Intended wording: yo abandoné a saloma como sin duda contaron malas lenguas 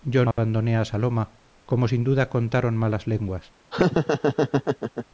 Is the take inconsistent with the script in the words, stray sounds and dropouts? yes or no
yes